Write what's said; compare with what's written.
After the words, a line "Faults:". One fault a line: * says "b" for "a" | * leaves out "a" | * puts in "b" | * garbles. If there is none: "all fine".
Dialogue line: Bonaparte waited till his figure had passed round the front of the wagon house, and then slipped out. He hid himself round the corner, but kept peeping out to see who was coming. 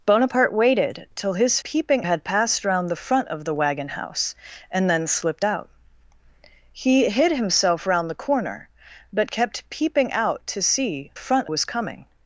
Bonaparte waited till his peeping had passed round the front of the wagon house, and then slipped out. He hid himself round the corner, but kept peeping out to see front was coming.
Faults:
* says "peeping" for "figure"
* says "front" for "who"